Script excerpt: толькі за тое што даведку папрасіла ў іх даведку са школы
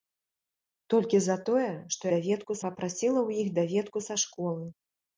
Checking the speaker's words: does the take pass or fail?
pass